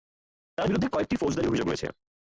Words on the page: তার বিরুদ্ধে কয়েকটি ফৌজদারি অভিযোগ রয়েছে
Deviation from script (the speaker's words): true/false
false